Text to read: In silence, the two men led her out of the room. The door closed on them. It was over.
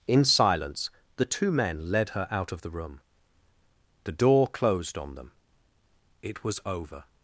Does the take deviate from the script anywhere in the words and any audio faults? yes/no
no